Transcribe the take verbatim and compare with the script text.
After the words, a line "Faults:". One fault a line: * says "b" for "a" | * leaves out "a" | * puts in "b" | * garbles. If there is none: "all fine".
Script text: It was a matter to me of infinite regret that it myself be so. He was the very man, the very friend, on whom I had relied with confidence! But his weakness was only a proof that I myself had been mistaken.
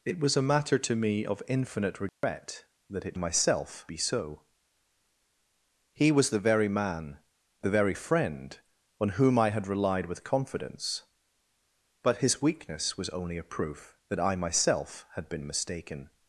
It was a matter to me of infinite regret that it myself be so. He was the very man, the very friend, on whom I had relied with confidence! But his weakness was only a proof that I myself had been mistaken.
Faults:
all fine